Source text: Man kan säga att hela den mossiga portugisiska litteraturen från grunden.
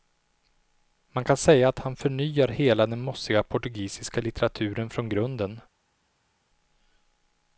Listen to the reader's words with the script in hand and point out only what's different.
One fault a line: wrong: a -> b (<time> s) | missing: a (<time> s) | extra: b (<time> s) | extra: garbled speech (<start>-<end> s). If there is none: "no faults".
extra: han förnyar (1.8 s)